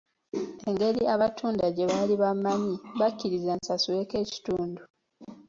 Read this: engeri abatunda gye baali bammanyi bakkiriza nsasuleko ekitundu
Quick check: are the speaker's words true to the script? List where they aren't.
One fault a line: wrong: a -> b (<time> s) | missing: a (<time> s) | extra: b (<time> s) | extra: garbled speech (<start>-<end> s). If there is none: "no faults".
no faults